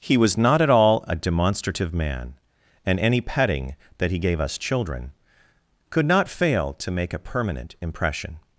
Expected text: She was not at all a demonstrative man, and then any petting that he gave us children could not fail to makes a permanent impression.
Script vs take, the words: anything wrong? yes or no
yes